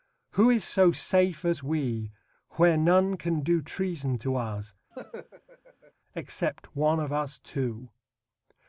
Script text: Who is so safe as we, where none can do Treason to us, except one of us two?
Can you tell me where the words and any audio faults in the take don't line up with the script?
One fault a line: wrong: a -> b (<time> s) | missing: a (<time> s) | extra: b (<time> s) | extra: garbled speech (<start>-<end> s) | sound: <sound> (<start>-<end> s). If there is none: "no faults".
sound: laugh (4.9-5.9 s)